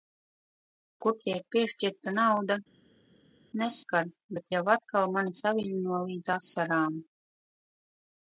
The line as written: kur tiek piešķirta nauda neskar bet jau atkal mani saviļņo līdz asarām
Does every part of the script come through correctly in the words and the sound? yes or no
yes